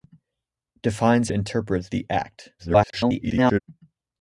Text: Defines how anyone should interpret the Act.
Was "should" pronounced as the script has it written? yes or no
no